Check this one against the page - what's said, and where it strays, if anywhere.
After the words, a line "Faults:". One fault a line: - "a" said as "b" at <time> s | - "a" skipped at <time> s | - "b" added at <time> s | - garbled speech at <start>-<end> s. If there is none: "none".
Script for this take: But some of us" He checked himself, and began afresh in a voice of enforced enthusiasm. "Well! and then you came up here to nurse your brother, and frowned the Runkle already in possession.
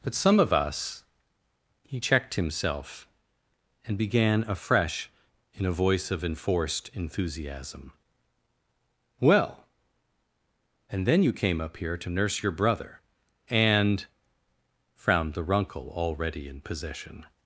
But some of us" He checked himself, and began afresh in a voice of enforced enthusiasm. "Well! and then you came up here to nurse your brother, and frowned the Runkle already in possession.
Faults:
none